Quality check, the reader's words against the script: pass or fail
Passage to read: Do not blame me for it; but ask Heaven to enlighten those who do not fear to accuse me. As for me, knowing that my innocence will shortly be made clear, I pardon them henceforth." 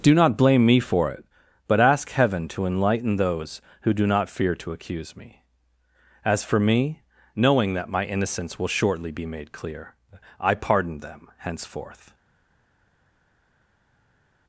pass